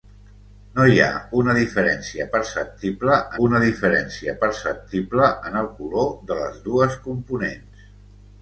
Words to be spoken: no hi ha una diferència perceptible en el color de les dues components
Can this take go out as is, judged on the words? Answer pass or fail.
fail